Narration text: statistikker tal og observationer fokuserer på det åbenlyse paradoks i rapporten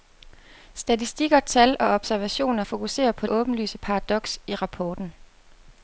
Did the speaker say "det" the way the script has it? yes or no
no